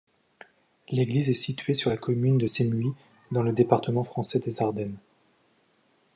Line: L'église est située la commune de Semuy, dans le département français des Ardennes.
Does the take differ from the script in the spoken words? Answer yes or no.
yes